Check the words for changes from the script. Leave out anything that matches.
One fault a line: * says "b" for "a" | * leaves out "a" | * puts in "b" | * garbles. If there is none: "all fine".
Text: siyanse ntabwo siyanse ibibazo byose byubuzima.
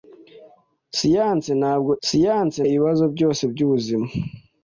all fine